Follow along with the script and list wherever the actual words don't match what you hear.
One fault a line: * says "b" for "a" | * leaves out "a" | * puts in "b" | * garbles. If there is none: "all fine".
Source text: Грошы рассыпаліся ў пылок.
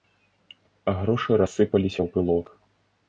all fine